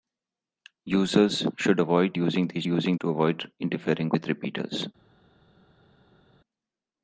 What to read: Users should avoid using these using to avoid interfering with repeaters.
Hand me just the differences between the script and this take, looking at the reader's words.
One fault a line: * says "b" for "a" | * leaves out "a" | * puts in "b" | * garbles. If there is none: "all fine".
all fine